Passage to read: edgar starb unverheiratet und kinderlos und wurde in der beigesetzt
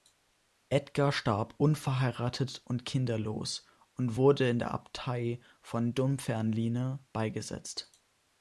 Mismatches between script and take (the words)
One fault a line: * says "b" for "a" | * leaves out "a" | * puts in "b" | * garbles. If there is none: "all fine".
* puts in "abtei von dunfermline"